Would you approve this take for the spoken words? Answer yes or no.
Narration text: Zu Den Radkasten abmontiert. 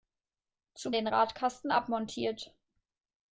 yes